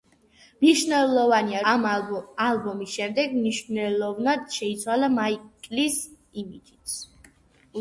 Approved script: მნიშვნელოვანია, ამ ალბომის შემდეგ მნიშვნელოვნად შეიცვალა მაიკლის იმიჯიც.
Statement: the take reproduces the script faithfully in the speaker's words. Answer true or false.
true